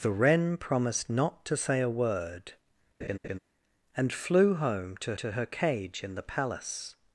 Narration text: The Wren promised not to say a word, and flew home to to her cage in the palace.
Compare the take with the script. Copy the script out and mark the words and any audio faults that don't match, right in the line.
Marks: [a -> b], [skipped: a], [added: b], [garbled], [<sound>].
The Wren promised not to say a word, [laugh] and flew home to to her cage in the palace.